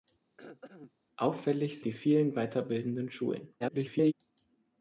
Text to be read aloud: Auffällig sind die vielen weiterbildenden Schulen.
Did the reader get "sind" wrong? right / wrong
wrong